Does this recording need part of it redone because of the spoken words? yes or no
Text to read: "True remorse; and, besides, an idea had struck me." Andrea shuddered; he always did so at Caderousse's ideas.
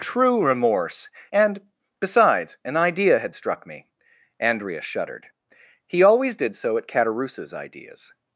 no